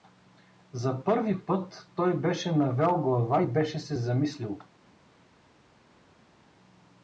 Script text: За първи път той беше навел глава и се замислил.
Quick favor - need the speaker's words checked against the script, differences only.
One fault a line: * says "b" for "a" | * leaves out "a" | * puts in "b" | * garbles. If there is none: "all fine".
* puts in "беше"